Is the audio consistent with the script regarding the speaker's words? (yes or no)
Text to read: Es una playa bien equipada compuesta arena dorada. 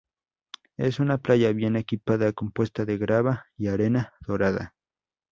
no